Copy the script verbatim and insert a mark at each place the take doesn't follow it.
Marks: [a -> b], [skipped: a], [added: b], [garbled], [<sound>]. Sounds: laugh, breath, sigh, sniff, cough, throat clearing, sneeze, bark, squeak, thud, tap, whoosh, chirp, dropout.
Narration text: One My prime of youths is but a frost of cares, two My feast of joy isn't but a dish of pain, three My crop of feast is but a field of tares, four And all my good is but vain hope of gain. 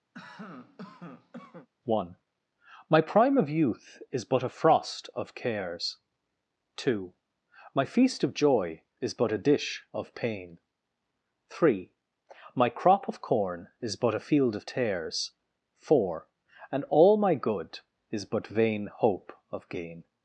[cough] One My prime of [youths -> youth] is but a frost of cares, two My feast of joy [isn't -> is] but a dish of pain, three My crop of [feast -> corn] is but a field of tares, four And all my good is but vain hope of gain.